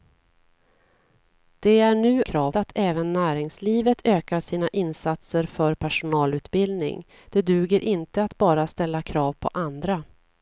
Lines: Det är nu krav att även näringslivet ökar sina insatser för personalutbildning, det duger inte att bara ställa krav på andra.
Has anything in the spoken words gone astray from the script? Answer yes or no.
no